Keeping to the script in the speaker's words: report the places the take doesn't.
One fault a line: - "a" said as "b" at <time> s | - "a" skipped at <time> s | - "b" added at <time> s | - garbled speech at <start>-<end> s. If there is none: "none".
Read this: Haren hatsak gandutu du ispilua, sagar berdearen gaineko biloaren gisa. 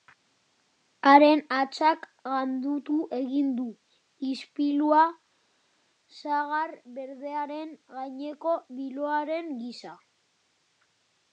- "egin" added at 3.2 s